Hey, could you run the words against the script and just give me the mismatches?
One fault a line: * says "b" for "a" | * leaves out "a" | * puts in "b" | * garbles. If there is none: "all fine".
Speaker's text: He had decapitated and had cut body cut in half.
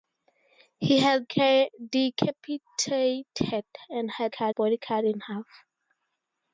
all fine